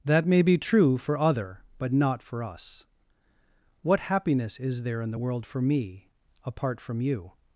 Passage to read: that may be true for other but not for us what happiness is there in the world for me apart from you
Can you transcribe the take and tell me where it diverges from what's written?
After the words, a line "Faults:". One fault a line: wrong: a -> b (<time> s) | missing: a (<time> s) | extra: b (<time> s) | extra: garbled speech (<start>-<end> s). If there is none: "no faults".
that may be true for other but not for us what happiness is there in the world for me apart from you
Faults:
no faults